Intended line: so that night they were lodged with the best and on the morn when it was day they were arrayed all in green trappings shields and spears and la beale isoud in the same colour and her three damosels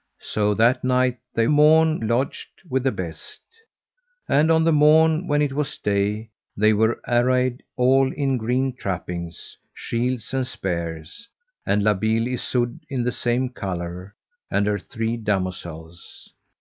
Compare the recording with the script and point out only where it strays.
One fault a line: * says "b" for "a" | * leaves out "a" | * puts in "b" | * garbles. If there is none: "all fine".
* says "morn" for "were"